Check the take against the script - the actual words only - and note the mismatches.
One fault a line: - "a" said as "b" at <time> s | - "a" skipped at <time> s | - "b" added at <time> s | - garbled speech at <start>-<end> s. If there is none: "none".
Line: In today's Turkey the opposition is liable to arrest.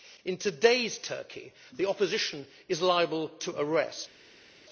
none